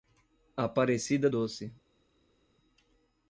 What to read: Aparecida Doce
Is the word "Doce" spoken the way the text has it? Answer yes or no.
yes